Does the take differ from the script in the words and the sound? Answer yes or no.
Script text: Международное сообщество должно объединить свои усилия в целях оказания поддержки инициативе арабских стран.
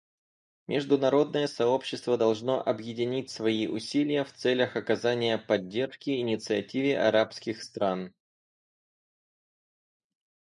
no